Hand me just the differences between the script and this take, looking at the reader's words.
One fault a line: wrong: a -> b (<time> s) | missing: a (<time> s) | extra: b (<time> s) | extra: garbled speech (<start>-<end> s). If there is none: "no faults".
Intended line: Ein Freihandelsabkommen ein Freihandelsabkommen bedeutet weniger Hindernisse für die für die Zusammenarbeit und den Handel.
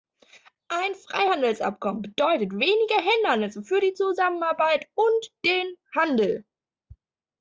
missing: ein Freihandelsabkommen (2.0 s)
missing: für die (3.9 s)